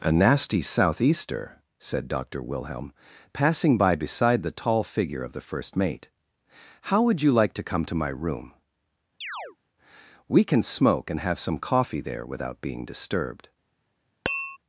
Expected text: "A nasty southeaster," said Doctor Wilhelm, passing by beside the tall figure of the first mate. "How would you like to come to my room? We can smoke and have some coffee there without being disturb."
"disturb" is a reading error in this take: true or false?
true